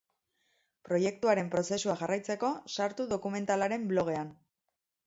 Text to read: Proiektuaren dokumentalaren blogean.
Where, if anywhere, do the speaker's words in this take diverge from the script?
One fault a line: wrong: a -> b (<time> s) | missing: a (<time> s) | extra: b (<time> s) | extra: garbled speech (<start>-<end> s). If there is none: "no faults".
extra: prozesua jarraitzeko sartu (1.6 s)